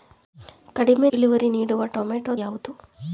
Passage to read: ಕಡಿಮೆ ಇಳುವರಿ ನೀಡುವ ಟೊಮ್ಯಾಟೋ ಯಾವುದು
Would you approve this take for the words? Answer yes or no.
yes